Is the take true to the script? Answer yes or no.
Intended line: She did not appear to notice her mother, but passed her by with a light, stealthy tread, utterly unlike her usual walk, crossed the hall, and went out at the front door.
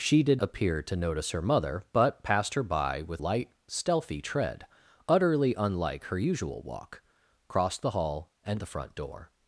no